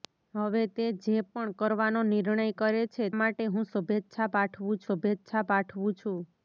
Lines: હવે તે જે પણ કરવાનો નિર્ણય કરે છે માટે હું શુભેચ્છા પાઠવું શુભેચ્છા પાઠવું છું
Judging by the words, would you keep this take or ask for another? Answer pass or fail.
pass